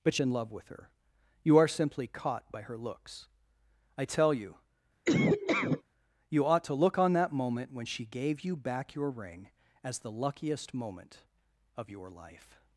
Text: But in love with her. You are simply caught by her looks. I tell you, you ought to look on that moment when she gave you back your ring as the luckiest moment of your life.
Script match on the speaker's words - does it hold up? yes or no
yes